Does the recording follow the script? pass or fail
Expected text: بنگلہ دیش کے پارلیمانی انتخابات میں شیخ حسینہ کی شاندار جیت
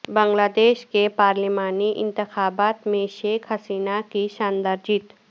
pass